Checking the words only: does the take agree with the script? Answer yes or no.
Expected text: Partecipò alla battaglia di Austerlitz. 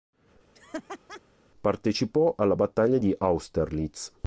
yes